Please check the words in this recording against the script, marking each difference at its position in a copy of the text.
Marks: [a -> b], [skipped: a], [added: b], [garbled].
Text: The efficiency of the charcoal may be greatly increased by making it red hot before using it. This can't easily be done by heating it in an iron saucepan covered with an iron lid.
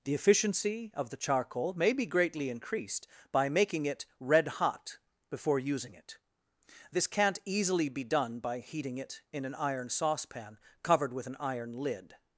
The efficiency of the charcoal may be greatly increased by making it red hot before using it. This can't easily be done by heating it in an iron saucepan covered with an iron lid.